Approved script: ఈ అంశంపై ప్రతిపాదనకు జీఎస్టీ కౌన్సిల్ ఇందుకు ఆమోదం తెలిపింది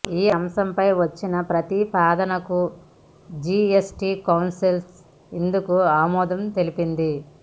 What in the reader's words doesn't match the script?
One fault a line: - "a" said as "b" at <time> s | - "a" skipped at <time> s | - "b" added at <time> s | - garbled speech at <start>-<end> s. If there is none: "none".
- "వచ్చిన" added at 1.0 s